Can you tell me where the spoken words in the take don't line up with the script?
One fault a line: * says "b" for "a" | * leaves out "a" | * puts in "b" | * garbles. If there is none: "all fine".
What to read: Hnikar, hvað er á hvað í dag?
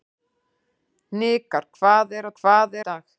all fine